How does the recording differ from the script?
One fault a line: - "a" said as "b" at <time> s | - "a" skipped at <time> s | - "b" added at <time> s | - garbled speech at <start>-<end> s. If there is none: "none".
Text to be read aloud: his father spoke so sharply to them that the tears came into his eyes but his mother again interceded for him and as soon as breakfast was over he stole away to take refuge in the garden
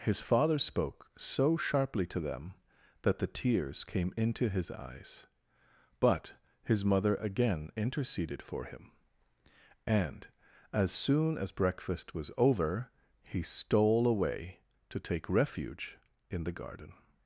none